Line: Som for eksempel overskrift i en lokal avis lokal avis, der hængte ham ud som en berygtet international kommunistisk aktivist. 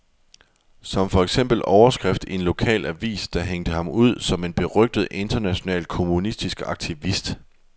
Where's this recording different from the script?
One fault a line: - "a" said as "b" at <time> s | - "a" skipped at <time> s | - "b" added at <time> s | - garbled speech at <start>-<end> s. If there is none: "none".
- "lokal avis" skipped at 3.3 s